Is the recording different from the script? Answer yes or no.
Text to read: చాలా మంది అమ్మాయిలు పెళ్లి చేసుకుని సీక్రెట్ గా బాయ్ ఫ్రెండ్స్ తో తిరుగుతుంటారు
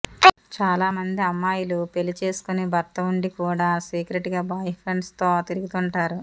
yes